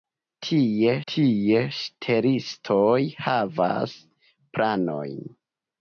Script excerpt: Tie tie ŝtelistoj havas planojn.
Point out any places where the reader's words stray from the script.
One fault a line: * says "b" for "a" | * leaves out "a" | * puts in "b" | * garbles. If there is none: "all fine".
all fine